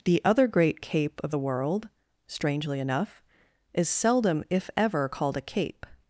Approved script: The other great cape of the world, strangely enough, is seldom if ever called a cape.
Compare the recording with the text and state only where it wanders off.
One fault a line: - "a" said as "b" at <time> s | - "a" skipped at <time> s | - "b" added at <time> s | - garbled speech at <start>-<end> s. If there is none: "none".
none